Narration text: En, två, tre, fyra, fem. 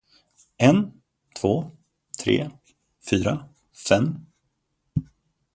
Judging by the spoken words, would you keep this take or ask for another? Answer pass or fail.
pass